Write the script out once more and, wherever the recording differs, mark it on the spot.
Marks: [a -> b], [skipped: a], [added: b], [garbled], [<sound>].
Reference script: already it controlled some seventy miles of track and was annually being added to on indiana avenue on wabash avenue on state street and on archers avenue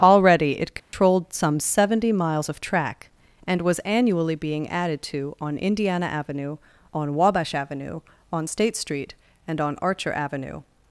already it controlled [dropout] some seventy miles of track and was annually being added to on indiana avenue on wabash avenue on state street and on [archers -> archer] avenue